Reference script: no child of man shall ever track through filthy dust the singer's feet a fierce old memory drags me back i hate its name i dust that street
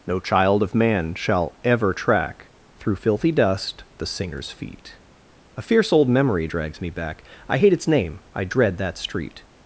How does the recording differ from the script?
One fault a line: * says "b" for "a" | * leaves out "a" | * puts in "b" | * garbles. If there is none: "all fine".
* says "dread" for "dust"